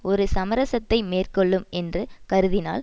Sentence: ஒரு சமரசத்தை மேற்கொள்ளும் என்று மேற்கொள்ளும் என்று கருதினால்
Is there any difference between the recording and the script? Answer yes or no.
yes